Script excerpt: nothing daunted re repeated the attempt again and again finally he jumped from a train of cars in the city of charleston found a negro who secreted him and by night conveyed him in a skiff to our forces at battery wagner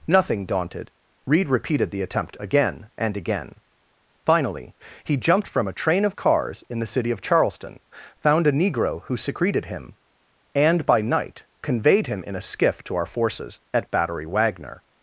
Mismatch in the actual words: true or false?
true